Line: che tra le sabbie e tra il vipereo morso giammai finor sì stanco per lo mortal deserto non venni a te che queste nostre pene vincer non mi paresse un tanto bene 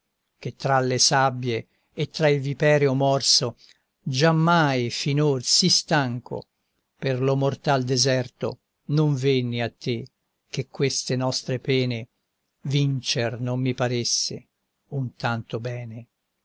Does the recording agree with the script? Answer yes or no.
yes